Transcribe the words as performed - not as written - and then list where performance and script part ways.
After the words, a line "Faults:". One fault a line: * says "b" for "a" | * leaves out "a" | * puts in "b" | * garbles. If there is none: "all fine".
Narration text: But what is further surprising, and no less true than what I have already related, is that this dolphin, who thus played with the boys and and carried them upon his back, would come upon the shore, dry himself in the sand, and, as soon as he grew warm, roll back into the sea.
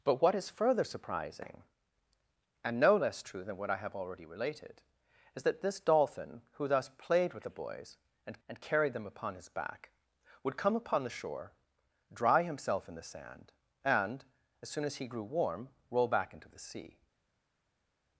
But what is further surprising, and no less true than what I have already related, is that this dolphin, who thus played with the boys and and carried them upon his back, would come upon the shore, dry himself in the sand, and, as soon as he grew warm, roll back into the sea.
Faults:
all fine